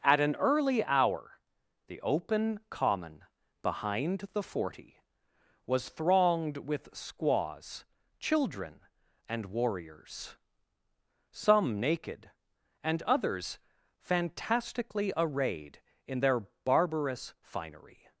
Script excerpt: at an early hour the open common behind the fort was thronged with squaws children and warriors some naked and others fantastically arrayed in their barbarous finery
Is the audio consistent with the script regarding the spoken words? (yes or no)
no